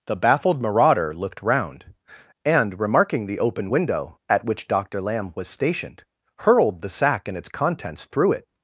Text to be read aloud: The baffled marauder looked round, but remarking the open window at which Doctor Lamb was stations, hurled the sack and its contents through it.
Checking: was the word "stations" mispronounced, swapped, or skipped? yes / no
yes